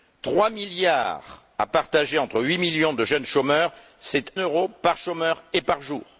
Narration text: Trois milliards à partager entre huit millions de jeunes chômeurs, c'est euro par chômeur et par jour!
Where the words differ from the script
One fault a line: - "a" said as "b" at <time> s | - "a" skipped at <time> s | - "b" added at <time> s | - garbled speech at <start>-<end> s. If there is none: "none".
none